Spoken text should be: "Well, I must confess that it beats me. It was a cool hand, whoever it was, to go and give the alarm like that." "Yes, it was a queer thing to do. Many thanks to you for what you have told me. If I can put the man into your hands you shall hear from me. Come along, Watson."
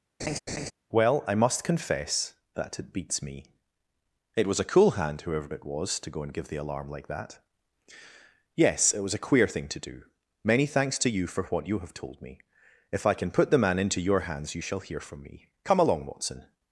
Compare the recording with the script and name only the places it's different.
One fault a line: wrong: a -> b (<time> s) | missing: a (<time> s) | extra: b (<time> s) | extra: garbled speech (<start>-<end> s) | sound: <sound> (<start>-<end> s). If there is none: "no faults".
sound: laugh (0.2-0.7 s)